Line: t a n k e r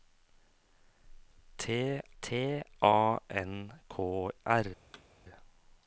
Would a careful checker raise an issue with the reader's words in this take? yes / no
yes